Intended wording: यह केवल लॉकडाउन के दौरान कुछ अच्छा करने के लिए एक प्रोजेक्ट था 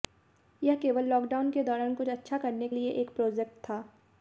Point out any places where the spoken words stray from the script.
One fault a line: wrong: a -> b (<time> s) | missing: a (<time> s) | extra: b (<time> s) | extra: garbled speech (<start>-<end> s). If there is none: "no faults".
missing: के (2.7 s)